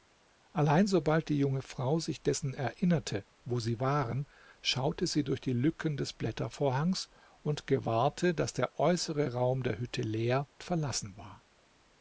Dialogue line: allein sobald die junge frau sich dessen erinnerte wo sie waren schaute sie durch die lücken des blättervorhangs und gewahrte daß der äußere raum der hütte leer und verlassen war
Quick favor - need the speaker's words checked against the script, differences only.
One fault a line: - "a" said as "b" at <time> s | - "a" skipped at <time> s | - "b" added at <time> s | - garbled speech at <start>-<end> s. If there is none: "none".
- "und" skipped at 10.5 s